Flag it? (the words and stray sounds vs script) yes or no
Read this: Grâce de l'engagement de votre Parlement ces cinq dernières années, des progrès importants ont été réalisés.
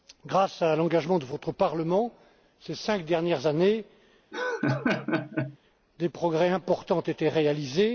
yes